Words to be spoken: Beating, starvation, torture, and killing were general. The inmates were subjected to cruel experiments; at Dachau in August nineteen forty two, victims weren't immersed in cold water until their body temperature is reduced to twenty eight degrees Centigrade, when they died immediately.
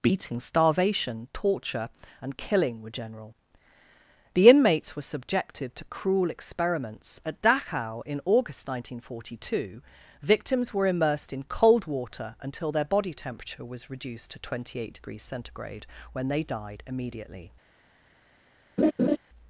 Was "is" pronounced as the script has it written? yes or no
no